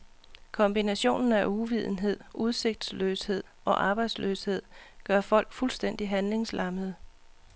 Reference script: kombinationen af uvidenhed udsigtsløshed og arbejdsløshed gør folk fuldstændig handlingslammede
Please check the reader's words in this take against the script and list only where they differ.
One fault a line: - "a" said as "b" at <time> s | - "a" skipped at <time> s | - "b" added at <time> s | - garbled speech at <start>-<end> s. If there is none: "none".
none